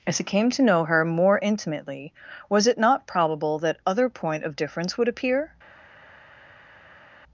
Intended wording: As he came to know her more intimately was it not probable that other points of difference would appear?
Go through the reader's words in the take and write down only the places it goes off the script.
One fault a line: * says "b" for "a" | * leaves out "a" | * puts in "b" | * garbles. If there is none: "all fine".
* says "point" for "points"